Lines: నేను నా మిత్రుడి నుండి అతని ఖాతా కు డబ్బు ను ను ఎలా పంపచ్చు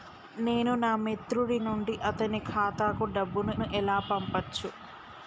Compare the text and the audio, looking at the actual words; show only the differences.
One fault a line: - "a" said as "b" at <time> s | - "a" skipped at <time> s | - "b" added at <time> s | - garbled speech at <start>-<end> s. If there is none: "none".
none